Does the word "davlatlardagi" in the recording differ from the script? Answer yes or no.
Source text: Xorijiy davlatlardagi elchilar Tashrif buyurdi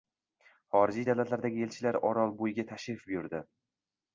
no